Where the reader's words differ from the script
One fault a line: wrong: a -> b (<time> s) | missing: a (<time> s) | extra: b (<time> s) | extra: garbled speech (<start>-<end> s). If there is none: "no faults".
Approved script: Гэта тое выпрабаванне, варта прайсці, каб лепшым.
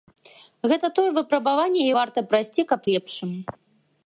no faults